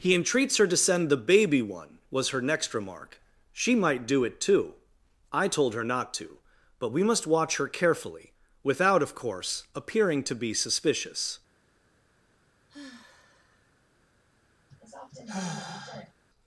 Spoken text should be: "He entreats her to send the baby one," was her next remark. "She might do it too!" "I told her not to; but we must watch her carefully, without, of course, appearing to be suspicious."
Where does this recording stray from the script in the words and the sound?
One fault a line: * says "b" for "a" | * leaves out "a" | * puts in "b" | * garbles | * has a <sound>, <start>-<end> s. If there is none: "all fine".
* has a sigh, 12.7-13.7 s
* has a sigh, 14.7-16.1 s